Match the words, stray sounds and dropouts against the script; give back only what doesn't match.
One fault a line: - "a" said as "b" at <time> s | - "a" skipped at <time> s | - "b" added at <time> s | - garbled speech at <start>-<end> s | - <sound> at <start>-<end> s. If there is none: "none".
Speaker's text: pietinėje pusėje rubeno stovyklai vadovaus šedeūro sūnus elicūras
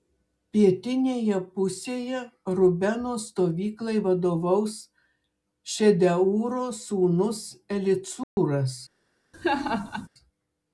- dropout at 8.2-8.4 s
- laugh at 9.3-10.1 s